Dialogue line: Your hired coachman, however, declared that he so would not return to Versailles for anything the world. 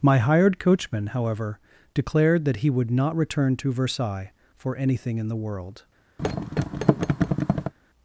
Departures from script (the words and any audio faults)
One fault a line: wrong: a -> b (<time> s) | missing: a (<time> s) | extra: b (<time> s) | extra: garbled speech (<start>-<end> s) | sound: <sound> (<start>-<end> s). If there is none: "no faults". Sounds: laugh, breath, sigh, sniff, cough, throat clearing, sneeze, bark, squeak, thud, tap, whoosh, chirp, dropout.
wrong: Your -> My (0.0 s)
missing: so (2.7 s)
extra: in (5.2 s)
sound: thud (6.2-7.7 s)